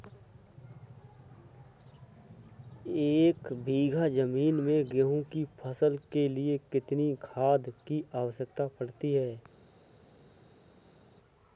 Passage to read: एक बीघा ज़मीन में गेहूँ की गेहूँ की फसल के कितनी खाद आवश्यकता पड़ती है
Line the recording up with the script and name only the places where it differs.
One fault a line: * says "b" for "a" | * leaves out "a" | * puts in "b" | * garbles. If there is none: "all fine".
* leaves out "गेहूँ की"
* puts in "लिए"
* puts in "की"